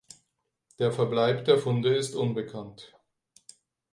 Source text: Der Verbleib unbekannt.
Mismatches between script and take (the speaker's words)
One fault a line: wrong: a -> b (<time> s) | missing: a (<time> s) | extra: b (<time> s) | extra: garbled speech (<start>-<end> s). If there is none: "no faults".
extra: der Funde ist (1.4 s)